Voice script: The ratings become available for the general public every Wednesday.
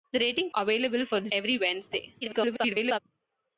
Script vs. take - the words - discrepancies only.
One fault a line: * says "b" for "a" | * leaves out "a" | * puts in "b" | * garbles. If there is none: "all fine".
* leaves out "become"
* leaves out "general public"
* garbles